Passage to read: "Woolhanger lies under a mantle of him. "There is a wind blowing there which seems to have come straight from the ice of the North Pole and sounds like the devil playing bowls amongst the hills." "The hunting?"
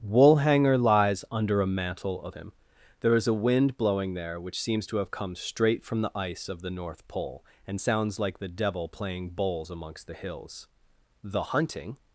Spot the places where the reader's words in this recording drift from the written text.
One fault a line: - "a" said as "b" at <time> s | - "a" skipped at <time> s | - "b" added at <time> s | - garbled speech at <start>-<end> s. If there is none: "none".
none